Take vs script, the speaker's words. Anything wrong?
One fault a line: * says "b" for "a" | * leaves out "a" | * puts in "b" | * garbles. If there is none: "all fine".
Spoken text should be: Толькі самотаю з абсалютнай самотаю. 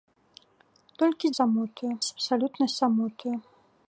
all fine